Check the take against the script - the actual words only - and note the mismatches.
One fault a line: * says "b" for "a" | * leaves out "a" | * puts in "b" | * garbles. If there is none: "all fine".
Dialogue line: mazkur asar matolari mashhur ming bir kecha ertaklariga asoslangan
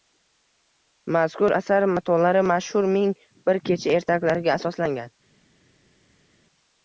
all fine